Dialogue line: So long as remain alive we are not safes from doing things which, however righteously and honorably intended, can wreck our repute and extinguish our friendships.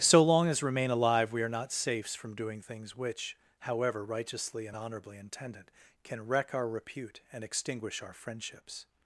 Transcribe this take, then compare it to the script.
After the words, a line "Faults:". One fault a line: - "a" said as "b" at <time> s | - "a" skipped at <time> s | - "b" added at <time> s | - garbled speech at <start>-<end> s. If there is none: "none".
So long as remain alive we are not safes from doing things which, however righteously and honorably intended, can wreck our repute and extinguish our friendships.
Faults:
none